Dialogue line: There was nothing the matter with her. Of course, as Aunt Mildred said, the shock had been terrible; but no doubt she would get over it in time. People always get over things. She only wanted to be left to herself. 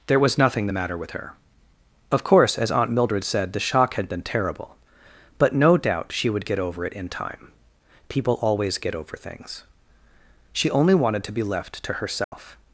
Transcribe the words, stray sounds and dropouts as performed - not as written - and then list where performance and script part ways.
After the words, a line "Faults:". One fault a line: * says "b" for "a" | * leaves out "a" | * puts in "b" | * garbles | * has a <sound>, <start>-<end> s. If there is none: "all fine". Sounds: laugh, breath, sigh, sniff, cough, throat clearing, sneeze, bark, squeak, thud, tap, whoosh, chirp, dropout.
There was nothing the matter with her. Of course, as Aunt Mildred said, the shock had been terrible; but no doubt she would get over it in time. People always get over things. She only wanted to be left to herself.
Faults:
* has a dropout, 12.2-12.3 s